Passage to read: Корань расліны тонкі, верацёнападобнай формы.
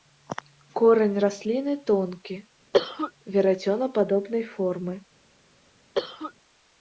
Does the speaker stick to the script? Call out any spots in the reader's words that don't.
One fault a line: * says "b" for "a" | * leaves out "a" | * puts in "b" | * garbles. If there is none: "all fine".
all fine